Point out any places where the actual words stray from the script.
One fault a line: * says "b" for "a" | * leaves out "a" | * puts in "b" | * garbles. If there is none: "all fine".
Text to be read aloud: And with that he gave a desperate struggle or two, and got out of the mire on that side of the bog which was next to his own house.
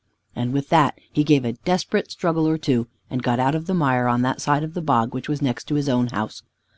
all fine